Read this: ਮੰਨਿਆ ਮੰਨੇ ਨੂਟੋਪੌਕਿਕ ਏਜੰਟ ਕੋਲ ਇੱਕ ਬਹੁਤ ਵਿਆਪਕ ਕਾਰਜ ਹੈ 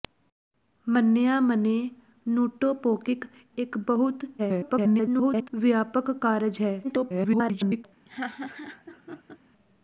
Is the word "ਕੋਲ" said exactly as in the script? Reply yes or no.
no